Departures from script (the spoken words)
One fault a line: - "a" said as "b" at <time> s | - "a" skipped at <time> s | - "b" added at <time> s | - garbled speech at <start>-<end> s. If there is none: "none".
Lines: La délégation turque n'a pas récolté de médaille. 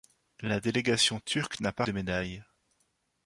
- "récolté" skipped at 1.8 s